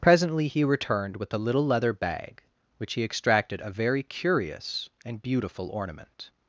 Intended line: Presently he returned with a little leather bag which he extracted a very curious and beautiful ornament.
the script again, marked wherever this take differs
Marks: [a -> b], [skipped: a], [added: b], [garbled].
Presently he returned with a little leather bag which he extracted a very curious and beautiful ornament.